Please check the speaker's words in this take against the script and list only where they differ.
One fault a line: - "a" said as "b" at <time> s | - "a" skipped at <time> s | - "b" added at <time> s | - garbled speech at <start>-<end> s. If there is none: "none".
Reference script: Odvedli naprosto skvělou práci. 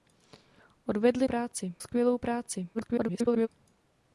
- "naprosto" said as "práci" at 1.2 s
- garbled speech at 2.7-3.5 s